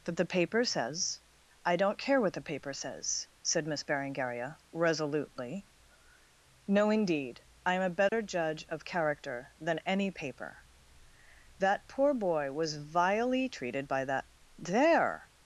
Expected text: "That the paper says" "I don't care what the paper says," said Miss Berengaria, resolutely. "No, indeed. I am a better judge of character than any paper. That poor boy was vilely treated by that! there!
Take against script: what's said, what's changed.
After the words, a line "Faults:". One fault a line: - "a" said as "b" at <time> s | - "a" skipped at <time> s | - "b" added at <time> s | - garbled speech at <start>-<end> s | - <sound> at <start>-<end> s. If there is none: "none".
"That the paper says" "I don't care what the paper says," said Miss Berengaria, resolutely. "No, indeed. I am a better judge of character than any paper. That poor boy was vilely treated by that! there!
Faults:
- dropout at 8.1-8.1 s